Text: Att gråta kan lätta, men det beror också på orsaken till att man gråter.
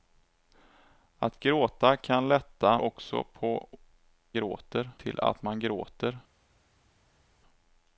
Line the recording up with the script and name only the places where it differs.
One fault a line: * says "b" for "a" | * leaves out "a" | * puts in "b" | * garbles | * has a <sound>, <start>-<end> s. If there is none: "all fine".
* leaves out "men det beror"
* says "gråter" for "orsaken"